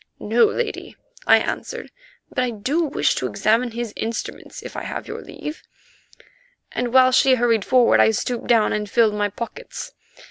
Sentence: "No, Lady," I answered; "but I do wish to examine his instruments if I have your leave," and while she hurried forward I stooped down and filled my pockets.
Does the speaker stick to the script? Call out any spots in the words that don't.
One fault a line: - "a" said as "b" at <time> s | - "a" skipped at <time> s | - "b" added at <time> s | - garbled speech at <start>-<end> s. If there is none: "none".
none